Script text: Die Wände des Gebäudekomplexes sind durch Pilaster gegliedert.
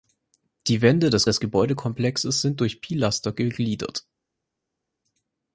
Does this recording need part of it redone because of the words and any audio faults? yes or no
yes